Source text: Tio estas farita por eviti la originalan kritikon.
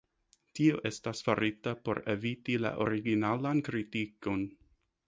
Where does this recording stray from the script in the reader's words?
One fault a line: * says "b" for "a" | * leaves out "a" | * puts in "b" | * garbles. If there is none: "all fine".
all fine